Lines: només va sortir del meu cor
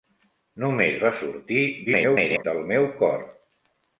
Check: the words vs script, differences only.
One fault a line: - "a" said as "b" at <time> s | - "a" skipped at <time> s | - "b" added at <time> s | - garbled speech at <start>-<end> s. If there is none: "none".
- garbled speech at 1.9-2.4 s